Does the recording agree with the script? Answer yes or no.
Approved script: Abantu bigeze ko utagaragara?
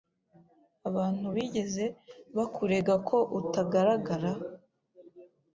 no